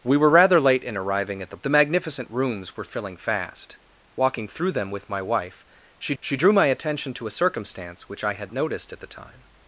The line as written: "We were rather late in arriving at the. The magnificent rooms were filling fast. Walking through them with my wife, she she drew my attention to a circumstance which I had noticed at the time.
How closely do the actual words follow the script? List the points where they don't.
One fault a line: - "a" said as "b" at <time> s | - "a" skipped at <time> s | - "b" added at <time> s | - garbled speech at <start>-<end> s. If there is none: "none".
none